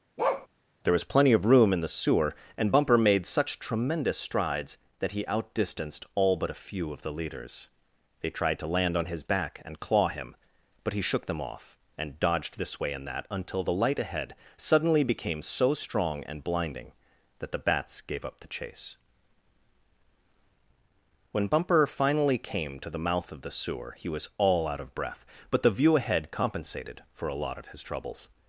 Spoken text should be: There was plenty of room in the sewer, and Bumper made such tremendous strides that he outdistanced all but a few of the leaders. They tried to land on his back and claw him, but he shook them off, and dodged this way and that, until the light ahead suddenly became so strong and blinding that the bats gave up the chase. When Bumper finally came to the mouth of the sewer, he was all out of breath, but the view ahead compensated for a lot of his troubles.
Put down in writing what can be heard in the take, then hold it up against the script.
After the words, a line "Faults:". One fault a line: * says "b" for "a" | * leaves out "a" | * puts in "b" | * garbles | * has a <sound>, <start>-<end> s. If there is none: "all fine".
There was plenty of room in the sewer, and Bumper made such tremendous strides that he outdistanced all but a few of the leaders. They tried to land on his back and claw him, but he shook them off, and dodged this way and that, until the light ahead suddenly became so strong and blinding that the bats gave up the chase. When Bumper finally came to the mouth of the sewer, he was all out of breath, but the view ahead compensated for a lot of his troubles.
Faults:
* has a bark, 0.2-0.5 s